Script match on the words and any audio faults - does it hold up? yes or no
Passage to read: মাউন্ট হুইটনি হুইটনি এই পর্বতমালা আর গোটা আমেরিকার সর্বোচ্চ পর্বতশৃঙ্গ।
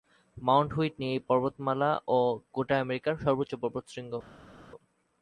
no